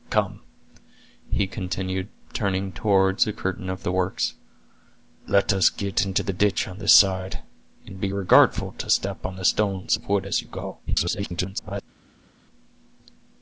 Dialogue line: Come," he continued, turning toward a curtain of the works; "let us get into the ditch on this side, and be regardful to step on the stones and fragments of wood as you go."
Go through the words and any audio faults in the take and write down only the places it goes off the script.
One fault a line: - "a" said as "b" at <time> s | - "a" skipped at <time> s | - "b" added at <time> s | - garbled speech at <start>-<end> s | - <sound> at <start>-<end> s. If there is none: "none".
- "and fragments" skipped at 10.0 s
- garbled speech at 10.9-11.8 s